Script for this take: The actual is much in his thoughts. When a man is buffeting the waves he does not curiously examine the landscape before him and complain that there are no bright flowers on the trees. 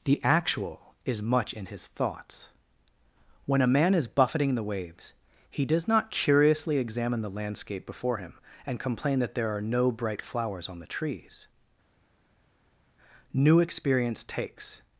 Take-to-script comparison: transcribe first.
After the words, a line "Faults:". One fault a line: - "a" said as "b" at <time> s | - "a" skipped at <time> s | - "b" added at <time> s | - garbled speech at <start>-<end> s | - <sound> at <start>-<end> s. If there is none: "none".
The actual is much in his thoughts. When a man is buffeting the waves he does not curiously examine the landscape before him and complain that there are no bright flowers on the trees. New experience takes
Faults:
- "New experience takes" added at 13.3 s